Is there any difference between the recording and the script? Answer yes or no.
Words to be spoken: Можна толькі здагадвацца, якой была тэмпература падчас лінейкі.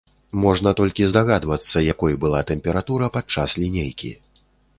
no